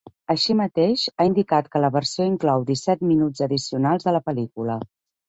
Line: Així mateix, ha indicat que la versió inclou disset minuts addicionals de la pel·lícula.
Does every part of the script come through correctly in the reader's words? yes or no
yes